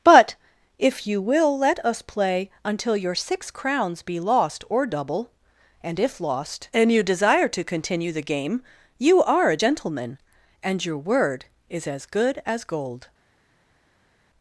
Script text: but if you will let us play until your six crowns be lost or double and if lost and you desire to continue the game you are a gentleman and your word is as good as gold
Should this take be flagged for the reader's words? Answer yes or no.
no